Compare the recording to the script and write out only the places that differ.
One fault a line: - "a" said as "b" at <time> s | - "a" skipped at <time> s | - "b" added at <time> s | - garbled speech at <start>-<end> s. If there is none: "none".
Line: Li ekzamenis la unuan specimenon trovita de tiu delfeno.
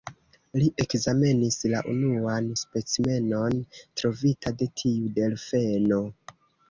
none